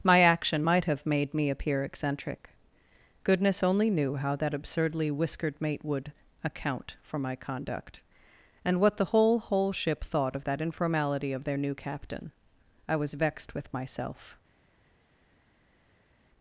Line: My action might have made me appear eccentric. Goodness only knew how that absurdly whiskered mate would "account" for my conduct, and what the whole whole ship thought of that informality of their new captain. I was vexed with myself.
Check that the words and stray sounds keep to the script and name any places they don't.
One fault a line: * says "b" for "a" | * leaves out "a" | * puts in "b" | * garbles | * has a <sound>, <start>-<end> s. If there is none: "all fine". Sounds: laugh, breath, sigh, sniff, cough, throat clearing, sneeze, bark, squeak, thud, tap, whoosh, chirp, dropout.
all fine